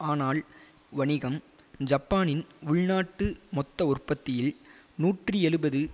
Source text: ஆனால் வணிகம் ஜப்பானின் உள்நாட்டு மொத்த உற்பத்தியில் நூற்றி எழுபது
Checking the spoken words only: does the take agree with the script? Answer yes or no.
yes